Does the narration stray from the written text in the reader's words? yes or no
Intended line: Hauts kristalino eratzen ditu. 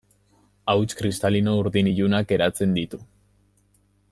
yes